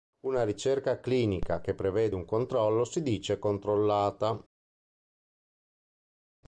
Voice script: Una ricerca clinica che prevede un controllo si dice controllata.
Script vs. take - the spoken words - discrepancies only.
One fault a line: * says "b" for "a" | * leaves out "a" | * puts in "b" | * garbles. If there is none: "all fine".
all fine